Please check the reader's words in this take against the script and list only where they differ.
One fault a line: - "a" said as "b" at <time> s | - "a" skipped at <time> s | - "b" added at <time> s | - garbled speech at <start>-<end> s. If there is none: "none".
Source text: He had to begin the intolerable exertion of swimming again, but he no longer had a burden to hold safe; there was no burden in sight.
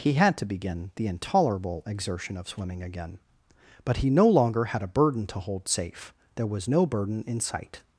none